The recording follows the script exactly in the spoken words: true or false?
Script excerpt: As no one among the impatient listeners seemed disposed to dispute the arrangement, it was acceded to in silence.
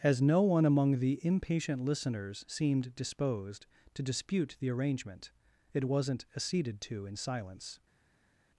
false